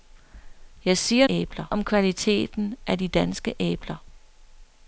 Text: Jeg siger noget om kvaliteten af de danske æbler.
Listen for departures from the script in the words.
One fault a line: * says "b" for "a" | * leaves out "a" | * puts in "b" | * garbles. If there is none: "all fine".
* says "æbler" for "noget"